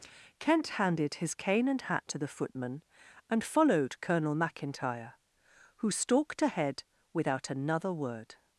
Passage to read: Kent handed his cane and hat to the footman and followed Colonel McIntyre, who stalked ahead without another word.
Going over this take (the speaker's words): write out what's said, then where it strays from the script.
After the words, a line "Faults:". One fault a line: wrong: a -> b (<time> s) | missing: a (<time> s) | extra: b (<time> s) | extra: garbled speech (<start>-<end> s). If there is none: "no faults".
Kent handed his cane and hat to the footman and followed Colonel McIntyre, who stalked ahead without another word.
Faults:
no faults